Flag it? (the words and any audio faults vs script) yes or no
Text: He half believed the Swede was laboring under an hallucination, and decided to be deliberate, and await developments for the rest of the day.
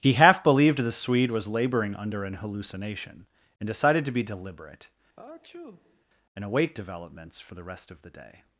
yes